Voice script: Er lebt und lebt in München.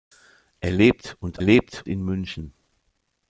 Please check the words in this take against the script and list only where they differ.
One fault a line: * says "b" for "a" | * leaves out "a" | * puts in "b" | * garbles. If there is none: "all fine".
all fine